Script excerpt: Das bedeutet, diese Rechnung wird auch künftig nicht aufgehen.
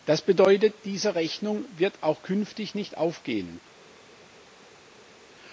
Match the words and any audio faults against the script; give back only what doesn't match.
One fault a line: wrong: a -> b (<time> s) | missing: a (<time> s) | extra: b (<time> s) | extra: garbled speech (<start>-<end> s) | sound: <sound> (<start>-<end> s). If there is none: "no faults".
no faults